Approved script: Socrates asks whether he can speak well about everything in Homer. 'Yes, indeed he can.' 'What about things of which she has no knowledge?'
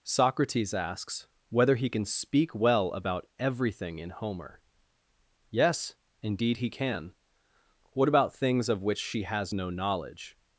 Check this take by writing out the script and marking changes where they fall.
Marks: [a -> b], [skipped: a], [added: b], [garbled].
Socrates asks whether he can speak well about everything in Homer. 'Yes, indeed he can.' 'What about things of which she has no knowledge?'